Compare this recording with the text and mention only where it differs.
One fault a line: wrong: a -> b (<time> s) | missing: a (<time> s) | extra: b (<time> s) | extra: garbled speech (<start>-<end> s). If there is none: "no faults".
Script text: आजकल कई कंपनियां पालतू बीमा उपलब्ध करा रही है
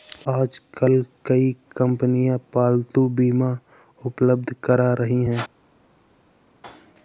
no faults